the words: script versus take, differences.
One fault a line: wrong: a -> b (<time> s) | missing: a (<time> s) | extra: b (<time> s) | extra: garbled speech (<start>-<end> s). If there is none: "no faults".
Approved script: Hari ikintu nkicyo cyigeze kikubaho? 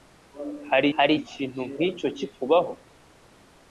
extra: hari (1.0 s)
missing: cyigeze (2.1 s)